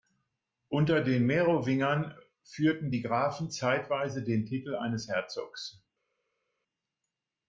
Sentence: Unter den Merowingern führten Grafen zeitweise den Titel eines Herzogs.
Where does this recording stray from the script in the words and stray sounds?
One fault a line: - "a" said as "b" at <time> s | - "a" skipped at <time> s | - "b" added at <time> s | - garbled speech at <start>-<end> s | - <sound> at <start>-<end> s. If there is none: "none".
- "die" added at 2.9 s